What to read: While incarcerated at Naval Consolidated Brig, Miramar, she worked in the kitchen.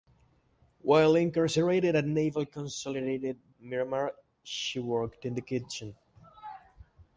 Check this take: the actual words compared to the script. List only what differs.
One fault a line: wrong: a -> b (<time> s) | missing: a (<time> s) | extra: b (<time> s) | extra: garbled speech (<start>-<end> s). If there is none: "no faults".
missing: Brig (3.4 s)